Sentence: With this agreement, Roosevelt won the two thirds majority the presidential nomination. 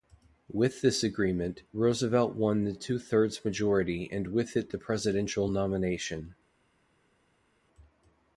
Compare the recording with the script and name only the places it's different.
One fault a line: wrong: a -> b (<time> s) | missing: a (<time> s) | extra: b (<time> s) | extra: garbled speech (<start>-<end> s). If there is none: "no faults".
extra: and with it (4.1 s)